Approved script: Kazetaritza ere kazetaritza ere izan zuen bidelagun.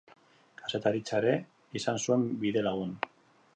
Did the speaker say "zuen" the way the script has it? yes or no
yes